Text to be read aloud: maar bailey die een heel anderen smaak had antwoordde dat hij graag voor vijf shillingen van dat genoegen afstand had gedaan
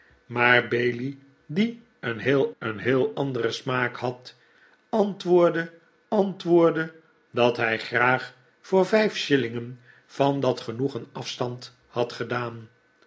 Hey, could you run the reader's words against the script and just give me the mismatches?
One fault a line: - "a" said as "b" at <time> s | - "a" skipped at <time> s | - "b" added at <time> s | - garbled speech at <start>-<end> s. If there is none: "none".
- "een heel" added at 2.6 s
- "antwoordde" added at 6.1 s